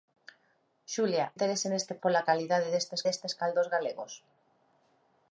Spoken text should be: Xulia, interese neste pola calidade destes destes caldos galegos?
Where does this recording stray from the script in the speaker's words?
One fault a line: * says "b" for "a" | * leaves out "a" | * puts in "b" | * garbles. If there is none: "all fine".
all fine